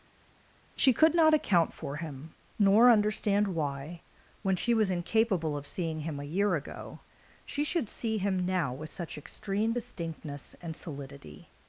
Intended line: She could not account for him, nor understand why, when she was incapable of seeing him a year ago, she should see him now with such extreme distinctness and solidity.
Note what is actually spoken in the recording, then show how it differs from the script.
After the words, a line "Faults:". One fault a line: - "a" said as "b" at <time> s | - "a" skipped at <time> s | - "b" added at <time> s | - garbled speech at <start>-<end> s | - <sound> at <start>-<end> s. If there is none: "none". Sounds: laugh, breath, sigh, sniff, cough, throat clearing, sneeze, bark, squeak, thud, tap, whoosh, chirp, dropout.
She could not account for him, nor understand why, when she was incapable of seeing him a year ago, she should see him now with such extreme distinctness and solidity.
Faults:
none